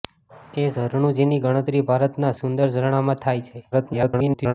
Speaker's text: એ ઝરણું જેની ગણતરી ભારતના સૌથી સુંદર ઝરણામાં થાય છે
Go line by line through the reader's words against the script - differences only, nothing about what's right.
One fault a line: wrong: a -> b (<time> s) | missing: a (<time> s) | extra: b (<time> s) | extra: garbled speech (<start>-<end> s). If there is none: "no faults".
missing: સૌથી (2.3 s)
extra: garbled speech (3.7-4.5 s)